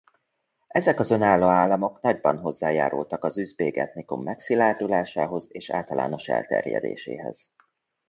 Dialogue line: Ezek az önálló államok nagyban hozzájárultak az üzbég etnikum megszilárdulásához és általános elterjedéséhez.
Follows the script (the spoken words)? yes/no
yes